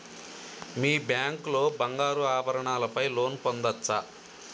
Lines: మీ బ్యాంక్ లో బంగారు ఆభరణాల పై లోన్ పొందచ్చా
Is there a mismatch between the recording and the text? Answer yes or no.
no